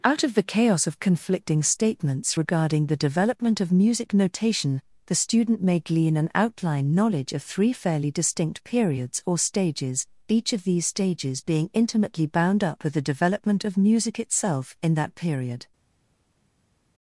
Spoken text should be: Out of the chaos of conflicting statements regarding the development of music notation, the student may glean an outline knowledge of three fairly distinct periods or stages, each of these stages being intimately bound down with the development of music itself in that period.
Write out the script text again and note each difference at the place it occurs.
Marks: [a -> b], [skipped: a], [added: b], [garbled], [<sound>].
Out of the chaos of conflicting statements regarding the development of music notation, the student may glean an outline knowledge of three fairly distinct periods or stages, each of these stages being intimately bound [down -> up] with the development of music itself in that period.